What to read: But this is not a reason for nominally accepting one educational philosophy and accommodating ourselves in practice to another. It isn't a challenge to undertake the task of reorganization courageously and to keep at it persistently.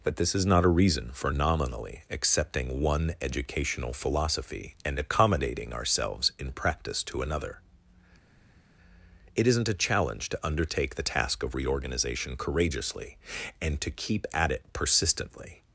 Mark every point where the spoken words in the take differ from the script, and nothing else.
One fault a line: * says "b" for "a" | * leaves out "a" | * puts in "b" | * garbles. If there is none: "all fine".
all fine